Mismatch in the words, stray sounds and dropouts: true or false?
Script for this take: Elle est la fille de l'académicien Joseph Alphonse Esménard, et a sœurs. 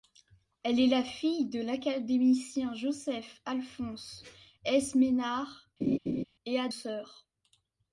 true